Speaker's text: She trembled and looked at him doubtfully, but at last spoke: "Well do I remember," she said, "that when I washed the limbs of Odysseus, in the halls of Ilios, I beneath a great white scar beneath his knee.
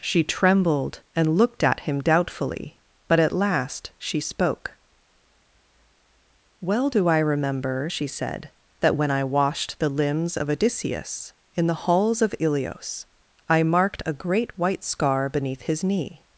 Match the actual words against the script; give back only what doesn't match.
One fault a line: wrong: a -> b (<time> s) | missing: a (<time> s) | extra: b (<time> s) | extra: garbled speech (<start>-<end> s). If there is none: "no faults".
extra: she (4.0 s)
wrong: beneath -> marked (13.6 s)